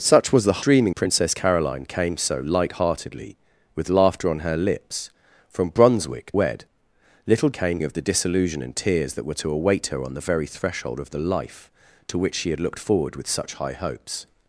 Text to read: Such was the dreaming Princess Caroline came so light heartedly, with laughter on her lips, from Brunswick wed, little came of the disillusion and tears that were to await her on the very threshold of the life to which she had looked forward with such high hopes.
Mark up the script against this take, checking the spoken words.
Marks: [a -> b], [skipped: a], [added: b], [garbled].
Such was the dreaming Princess Caroline came so light heartedly, with laughter on her lips, from Brunswick wed, little came of the disillusion and tears that were to await her on the very threshold of the life to which she had looked forward with such high hopes.